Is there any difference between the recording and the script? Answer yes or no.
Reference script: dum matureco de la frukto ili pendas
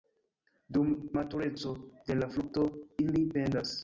no